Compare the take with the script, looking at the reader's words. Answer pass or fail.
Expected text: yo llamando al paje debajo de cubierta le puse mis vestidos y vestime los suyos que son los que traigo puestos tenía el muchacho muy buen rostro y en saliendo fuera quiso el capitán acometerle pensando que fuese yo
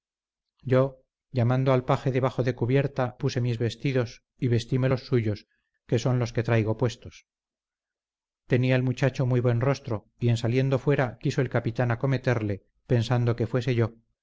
fail